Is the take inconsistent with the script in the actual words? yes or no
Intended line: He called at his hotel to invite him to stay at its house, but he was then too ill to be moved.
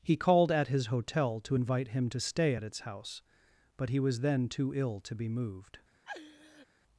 no